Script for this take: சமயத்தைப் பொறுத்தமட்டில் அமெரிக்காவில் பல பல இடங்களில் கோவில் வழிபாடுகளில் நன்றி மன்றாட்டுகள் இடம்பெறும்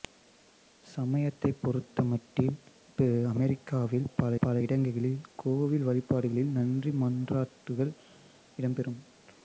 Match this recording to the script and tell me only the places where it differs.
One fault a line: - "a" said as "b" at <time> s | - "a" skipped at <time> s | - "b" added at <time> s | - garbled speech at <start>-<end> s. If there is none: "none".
none